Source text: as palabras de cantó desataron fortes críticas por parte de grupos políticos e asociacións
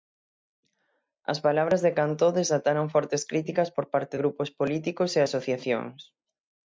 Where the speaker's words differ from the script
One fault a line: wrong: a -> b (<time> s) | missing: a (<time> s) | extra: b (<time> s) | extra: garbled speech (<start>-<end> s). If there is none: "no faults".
missing: de (4.2 s)